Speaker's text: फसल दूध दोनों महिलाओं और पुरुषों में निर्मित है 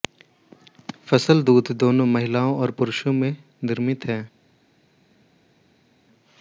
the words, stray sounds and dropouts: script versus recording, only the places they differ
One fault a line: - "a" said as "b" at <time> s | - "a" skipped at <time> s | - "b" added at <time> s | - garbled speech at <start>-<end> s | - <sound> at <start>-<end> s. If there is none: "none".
none